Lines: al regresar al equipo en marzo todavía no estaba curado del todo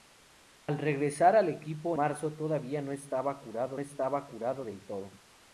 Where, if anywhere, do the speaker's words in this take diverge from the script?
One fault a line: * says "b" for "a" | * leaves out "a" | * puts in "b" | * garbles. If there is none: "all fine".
* leaves out "en"
* puts in "estaba curado"